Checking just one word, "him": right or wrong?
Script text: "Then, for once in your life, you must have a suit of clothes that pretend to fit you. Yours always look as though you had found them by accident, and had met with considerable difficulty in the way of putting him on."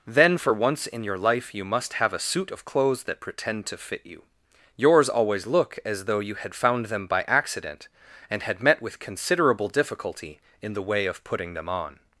wrong